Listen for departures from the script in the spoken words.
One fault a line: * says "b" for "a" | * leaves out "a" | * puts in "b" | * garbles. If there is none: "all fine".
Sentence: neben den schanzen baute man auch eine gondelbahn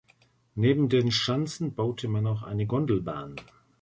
all fine